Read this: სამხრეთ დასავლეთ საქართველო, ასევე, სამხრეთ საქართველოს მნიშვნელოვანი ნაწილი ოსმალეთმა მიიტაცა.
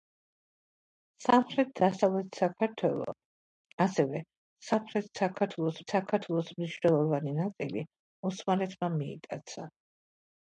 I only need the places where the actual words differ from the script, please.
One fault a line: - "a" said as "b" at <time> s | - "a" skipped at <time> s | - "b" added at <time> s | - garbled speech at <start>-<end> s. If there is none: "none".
- "საქართველოს" added at 5.9 s